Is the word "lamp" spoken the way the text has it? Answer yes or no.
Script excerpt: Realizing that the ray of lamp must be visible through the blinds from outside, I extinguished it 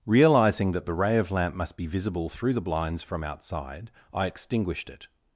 yes